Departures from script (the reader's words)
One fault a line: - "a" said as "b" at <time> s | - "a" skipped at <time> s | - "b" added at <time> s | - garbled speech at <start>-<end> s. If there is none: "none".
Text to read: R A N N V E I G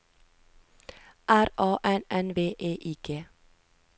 none